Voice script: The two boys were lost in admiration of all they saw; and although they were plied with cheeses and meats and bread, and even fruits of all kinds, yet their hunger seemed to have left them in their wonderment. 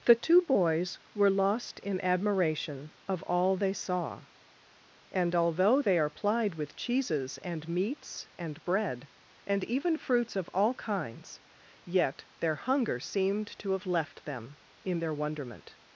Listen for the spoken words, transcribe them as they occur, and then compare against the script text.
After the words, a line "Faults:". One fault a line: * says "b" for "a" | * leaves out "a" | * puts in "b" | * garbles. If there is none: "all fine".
The two boys were lost in admiration of all they saw; and although they are plied with cheeses and meats and bread, and even fruits of all kinds, yet their hunger seemed to have left them in their wonderment.
Faults:
* says "are" for "were"